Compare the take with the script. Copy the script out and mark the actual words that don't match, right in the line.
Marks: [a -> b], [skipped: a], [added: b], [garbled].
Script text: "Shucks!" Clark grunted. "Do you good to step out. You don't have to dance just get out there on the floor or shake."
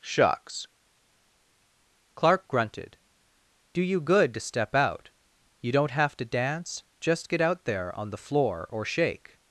"Shucks!" Clark grunted. "Do you good to step out. You don't have to dance just get out there on the floor or shake."